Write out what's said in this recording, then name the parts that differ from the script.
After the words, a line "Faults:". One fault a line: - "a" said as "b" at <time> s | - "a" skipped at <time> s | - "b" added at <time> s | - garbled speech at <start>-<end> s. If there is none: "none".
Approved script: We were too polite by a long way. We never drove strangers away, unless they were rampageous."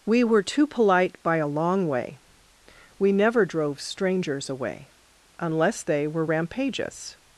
We were too polite by a long way. We never drove strangers away, unless they were rampageous."
Faults:
none